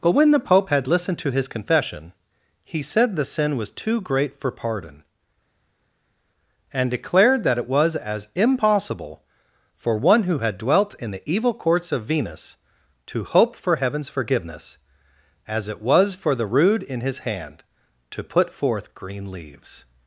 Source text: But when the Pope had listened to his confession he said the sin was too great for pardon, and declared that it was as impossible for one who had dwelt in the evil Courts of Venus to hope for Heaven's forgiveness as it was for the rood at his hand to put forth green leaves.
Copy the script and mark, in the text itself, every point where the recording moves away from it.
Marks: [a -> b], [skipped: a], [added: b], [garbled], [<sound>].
But when the Pope had listened to his confession he said the sin was too great for pardon, and declared that it was as impossible for one who had dwelt in the evil Courts of Venus to hope for Heaven's forgiveness as it was for the rood [at -> in] his hand to put forth green leaves.